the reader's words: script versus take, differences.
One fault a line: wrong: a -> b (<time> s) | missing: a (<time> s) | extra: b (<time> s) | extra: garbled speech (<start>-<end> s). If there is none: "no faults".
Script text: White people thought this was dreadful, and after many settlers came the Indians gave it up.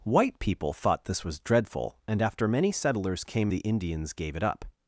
no faults